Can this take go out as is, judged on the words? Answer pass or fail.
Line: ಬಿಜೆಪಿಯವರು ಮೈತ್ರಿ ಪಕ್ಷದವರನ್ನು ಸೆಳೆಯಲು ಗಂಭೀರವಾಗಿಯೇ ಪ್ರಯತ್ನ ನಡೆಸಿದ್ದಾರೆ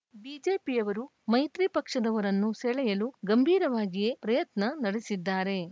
pass